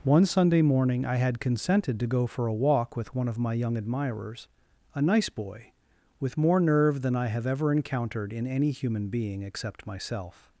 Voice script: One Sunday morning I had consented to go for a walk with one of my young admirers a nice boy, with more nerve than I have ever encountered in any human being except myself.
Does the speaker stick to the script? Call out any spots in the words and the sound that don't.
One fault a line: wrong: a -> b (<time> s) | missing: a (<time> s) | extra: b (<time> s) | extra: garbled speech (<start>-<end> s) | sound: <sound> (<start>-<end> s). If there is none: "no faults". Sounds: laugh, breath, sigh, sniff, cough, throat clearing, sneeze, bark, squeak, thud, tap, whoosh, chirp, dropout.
no faults